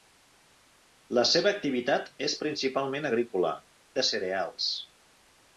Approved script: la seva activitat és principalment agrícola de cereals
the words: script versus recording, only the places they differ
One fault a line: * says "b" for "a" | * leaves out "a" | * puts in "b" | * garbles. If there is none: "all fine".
all fine